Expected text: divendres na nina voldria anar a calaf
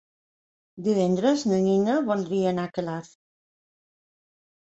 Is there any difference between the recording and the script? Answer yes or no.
no